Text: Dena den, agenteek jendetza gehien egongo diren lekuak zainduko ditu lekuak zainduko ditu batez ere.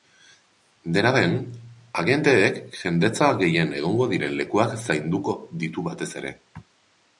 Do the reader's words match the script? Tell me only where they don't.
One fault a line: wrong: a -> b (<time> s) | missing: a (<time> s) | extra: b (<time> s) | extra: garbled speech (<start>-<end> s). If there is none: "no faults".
missing: lekuak zainduko ditu (5.9 s)